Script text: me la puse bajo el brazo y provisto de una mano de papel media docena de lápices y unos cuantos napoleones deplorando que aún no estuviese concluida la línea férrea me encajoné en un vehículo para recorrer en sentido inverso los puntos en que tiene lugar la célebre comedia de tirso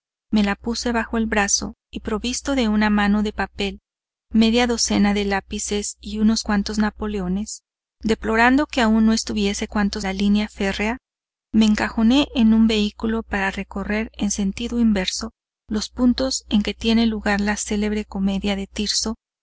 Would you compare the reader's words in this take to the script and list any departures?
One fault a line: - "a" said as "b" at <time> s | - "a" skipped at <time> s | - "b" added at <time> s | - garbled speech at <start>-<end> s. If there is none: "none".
- "concluida" said as "cuantos" at 9.7 s